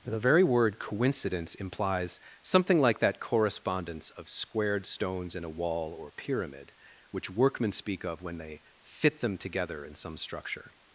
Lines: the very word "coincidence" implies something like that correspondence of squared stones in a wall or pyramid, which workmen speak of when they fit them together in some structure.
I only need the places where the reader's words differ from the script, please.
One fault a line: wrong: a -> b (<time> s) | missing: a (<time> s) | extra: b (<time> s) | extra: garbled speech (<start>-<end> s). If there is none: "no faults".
no faults